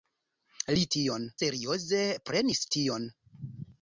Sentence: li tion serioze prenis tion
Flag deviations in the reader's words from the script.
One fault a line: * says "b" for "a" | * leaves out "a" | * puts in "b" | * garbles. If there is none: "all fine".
all fine